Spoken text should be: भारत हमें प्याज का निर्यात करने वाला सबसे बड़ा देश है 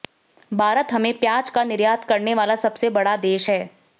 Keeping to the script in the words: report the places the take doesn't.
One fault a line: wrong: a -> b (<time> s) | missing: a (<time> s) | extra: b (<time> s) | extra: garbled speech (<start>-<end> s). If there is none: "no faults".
no faults